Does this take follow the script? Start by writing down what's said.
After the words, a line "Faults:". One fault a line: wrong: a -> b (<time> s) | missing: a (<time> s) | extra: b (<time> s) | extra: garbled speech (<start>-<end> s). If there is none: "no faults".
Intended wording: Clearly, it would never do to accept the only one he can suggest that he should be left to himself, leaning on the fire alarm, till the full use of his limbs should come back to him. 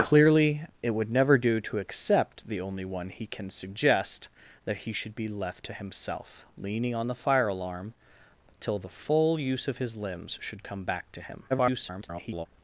Clearly, it would never do to accept the only one he can suggest that he should be left to himself, leaning on the fire alarm, till the full use of his limbs should come back to him. [garbled]
Faults:
extra: garbled speech (11.5-12.5 s)